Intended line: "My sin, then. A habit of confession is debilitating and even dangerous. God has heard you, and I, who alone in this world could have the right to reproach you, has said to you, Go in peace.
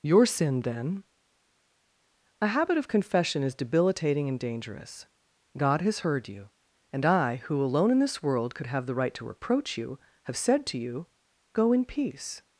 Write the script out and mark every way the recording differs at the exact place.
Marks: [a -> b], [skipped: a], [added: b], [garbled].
["My -> Your] sin, then. A habit of confession is debilitating and [skipped: even] dangerous. God has heard you, and I, who alone in this world could have the right to reproach you, [has -> have] said to you, Go in peace.